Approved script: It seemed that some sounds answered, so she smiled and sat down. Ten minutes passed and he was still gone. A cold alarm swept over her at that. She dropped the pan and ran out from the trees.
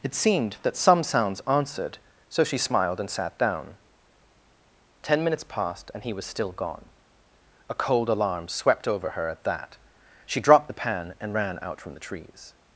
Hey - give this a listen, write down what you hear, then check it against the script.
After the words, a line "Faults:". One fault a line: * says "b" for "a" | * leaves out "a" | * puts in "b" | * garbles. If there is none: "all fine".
It seemed that some sounds answered, so she smiled and sat down. Ten minutes passed and he was still gone. A cold alarm swept over her at that. She dropped the pan and ran out from the trees.
Faults:
all fine